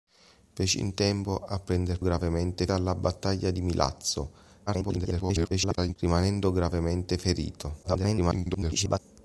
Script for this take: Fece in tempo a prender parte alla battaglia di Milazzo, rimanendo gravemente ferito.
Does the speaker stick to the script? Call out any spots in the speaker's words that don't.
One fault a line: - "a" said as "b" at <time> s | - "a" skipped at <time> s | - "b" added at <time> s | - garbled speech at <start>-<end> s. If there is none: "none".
- "parte" said as "gravemente" at 2.0 s
- garbled speech at 4.7-6.0 s
- garbled speech at 7.8-9.0 s